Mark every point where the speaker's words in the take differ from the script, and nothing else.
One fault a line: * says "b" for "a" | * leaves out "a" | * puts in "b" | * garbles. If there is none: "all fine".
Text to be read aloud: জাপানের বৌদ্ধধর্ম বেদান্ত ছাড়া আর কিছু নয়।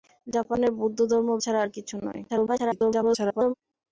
* leaves out "বেদান্ত"
* garbles